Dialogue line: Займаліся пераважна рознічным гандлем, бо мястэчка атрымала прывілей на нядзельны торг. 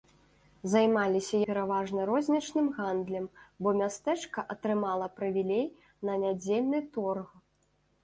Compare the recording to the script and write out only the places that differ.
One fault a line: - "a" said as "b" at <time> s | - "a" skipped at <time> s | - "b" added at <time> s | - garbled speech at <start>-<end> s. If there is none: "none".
none